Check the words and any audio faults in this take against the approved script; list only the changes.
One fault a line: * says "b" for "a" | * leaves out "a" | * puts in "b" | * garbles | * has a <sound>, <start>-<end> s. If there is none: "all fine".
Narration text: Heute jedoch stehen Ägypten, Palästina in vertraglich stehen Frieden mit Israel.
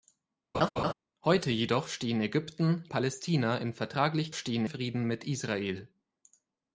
* has a laugh, 0.5-0.9 s